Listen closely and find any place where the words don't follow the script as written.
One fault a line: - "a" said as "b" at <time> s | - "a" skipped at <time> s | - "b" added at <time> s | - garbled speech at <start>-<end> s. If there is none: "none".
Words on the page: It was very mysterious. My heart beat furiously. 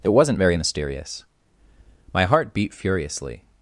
- "was" said as "wasn't" at 0.1 s